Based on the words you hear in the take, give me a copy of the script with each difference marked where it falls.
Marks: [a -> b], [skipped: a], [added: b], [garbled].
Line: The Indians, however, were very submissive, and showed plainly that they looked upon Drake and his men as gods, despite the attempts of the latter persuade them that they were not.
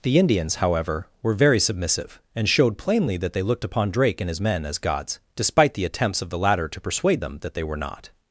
The Indians, however, were very submissive, and showed plainly that they looked upon Drake and his men as gods, despite the attempts of the latter [added: to] persuade them that they were not.